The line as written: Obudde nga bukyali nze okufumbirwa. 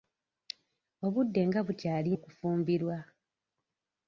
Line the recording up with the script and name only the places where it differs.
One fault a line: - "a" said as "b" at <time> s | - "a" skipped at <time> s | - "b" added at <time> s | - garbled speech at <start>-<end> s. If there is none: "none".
- "nze" skipped at 2.1 s